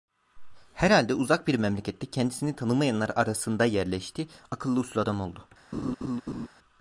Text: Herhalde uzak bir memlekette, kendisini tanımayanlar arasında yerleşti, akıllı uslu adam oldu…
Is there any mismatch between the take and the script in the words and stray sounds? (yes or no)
yes